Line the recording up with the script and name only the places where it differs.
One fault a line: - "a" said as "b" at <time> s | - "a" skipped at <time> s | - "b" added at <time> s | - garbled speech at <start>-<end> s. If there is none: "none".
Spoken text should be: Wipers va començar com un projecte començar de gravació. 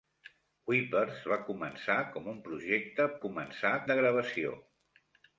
none